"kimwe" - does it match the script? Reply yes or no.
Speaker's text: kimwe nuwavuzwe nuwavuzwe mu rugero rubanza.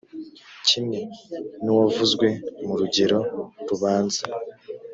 yes